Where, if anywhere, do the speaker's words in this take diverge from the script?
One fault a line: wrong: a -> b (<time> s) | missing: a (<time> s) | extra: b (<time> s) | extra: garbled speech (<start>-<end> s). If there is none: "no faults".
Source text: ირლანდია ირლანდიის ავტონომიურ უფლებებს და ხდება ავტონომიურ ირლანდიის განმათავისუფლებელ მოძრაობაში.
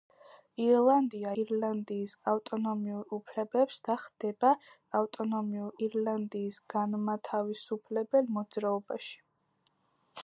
no faults